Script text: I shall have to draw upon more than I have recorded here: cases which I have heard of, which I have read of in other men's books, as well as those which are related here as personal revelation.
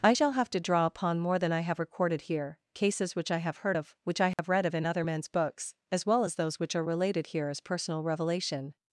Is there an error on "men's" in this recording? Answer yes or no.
no